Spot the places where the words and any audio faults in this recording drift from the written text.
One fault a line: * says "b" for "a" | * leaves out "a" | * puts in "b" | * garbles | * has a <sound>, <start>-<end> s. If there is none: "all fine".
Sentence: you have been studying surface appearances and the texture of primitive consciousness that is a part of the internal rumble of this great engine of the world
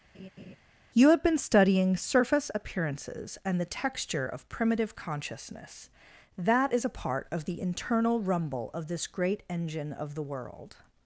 * has a laugh, 0.1-0.6 s